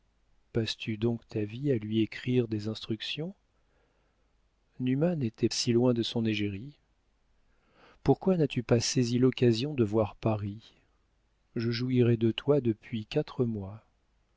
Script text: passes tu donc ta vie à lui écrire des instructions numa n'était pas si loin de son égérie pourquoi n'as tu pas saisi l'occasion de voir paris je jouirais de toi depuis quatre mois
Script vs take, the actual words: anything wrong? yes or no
yes